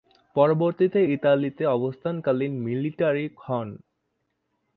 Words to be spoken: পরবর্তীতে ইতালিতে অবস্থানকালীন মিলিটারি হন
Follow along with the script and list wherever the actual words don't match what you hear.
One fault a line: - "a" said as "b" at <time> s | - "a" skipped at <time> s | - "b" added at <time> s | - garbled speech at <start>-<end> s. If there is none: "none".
none